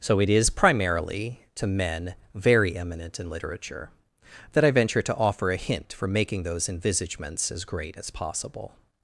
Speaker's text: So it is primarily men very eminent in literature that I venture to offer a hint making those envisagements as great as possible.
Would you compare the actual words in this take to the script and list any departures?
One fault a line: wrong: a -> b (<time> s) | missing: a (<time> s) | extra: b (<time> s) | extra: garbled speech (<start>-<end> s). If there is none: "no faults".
extra: to (1.5 s)
extra: for (5.9 s)